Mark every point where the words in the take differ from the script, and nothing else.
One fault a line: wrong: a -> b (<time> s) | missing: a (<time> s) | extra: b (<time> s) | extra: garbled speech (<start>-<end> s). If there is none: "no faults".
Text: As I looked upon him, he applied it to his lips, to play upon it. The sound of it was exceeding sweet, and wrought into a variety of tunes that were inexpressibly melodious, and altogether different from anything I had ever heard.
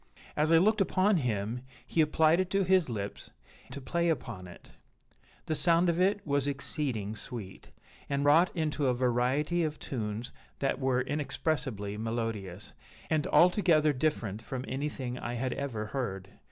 no faults